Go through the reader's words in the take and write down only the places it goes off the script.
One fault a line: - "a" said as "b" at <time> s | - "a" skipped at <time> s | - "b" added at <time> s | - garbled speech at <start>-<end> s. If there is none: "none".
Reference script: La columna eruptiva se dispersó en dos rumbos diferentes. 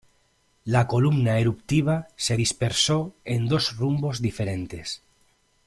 none